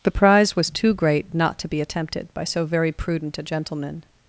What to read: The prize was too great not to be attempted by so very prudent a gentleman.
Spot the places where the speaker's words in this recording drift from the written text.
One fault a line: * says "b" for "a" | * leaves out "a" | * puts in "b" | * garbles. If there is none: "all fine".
all fine